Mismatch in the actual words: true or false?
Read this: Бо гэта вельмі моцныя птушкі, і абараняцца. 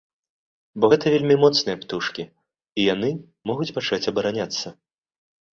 true